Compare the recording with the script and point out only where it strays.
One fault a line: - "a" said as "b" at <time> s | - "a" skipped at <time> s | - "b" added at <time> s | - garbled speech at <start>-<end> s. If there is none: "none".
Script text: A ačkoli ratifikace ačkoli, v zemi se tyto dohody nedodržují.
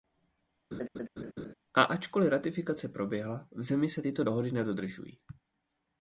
- "ačkoli" said as "proběhla" at 2.9 s